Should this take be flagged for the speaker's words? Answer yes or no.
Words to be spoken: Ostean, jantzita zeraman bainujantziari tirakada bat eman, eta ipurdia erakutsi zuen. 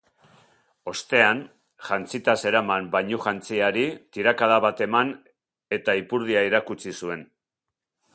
no